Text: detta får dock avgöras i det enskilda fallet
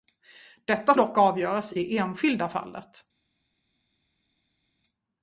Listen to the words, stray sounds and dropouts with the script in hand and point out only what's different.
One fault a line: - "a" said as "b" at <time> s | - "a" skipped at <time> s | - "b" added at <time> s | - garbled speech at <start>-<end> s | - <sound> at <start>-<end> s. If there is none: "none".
- "får" skipped at 0.9 s
- "i" skipped at 1.7 s